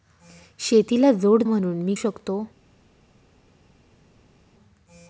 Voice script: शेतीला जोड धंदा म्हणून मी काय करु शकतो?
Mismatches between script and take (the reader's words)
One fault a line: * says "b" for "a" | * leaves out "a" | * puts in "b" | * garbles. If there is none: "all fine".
* leaves out "धंदा"
* leaves out "काय करु"